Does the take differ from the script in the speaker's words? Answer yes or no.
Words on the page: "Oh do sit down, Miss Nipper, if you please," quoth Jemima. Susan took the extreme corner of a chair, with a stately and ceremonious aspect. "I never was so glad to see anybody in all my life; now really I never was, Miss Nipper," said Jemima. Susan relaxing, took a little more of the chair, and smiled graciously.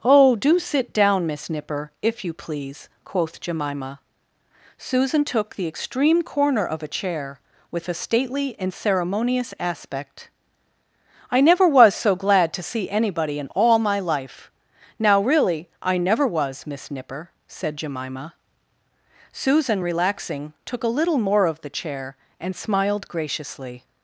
no